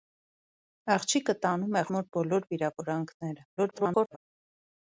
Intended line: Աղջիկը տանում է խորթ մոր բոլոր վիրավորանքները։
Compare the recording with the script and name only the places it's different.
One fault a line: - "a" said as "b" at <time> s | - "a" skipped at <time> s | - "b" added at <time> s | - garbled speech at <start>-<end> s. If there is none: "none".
- "խորթ" skipped at 1.9 s
- garbled speech at 3.6-4.2 s